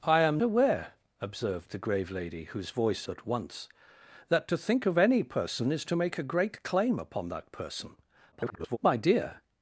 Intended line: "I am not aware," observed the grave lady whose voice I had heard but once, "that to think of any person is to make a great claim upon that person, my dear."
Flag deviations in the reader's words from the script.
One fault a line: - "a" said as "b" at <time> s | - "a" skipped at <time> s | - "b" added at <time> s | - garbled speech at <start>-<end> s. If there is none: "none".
- "not" skipped at 0.4 s
- "I had heard" skipped at 3.1 s
- garbled speech at 8.3-8.8 s